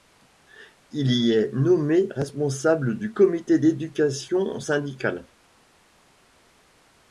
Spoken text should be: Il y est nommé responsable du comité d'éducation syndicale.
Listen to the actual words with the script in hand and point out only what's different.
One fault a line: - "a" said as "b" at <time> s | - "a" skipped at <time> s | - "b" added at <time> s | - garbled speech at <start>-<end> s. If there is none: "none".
none